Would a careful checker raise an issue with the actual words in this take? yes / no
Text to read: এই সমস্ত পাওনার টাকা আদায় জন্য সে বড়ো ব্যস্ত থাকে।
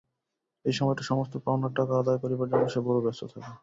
yes